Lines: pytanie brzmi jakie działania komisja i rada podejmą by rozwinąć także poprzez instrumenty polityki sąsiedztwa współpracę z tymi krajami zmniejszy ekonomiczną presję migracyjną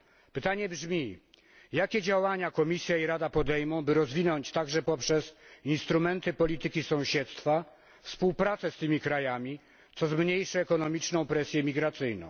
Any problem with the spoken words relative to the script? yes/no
yes